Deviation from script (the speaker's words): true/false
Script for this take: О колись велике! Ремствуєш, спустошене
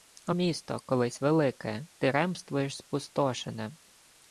true